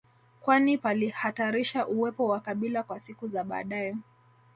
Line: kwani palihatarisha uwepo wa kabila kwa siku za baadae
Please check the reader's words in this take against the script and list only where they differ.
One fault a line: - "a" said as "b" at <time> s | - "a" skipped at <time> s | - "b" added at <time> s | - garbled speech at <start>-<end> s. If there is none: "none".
none